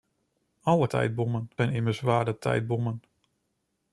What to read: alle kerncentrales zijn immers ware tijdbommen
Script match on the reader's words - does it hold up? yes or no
no